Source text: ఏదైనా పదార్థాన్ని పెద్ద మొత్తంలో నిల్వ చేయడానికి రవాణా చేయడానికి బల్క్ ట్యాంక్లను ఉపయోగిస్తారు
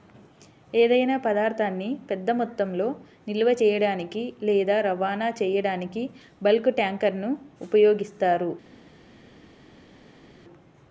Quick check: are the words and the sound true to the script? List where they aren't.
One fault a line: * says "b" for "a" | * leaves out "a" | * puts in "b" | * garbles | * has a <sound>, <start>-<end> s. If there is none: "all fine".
* puts in "లేదా"